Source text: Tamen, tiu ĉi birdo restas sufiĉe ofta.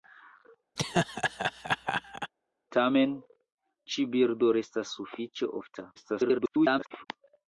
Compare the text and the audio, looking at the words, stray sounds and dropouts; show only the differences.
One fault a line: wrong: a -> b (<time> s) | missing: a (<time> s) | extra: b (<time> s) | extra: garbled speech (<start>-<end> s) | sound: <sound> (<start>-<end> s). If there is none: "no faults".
sound: laugh (0.8-2.3 s)
missing: tiu (3.2 s)
extra: garbled speech (6.0-7.1 s)